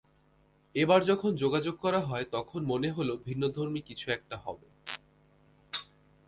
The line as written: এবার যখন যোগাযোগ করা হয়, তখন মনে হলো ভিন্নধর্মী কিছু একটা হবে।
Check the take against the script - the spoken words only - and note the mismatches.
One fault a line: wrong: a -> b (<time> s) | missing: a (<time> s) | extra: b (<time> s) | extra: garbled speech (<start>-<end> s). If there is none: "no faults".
no faults